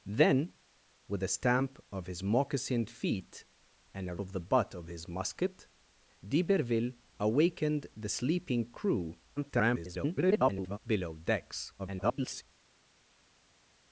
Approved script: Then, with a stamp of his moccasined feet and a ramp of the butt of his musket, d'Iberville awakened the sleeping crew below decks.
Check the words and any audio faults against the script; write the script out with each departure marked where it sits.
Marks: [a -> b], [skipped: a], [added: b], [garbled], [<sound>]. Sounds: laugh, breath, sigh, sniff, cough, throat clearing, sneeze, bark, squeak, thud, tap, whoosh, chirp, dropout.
Then, with a stamp of his moccasined feet and a [skipped: ramp] of the butt of his musket, d'Iberville awakened the sleeping crew [garbled] below decks. [garbled]